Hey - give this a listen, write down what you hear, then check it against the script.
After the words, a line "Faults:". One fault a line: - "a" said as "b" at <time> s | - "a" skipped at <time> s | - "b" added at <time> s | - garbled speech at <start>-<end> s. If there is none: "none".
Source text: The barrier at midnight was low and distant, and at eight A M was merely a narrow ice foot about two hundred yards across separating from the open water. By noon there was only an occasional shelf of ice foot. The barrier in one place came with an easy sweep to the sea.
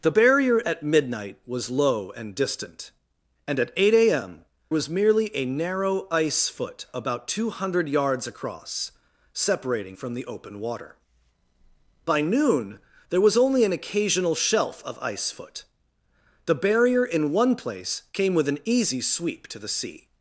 The barrier at midnight was low and distant, and at eight A M was merely a narrow ice foot about two hundred yards across separating from the open water. By noon there was only an occasional shelf of ice foot. The barrier in one place came with an easy sweep to the sea.
Faults:
none